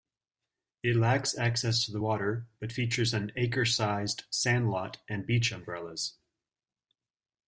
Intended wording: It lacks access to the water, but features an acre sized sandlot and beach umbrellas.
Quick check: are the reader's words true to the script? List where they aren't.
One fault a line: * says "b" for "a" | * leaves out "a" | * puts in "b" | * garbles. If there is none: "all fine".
all fine